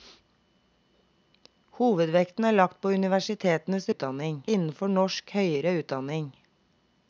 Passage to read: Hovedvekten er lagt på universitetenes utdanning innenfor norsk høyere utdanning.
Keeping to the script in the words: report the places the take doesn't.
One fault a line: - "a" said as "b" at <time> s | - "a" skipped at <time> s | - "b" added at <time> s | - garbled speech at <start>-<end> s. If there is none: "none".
none